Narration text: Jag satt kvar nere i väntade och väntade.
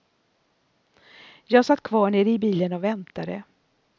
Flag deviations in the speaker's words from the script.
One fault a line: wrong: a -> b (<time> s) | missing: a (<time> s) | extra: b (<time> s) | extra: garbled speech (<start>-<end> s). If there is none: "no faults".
wrong: väntade -> bilen (2.4 s)